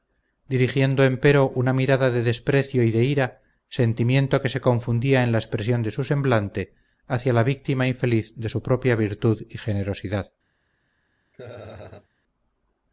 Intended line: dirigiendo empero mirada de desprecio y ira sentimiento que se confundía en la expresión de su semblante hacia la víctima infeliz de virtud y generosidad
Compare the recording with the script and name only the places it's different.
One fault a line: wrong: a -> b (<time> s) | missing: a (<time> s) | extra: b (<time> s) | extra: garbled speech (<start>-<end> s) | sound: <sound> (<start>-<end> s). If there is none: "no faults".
extra: una (1.5 s)
extra: de (2.9 s)
extra: su propia (8.5 s)
sound: laugh (11.3-12.1 s)